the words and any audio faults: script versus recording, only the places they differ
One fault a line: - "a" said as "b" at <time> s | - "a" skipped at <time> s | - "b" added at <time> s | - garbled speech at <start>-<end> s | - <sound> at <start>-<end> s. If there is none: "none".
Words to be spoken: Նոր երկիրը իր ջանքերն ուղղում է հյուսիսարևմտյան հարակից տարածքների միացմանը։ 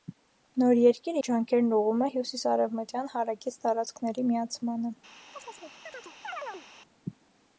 - "իր" skipped at 1.2 s
- chirp at 5.3-6.7 s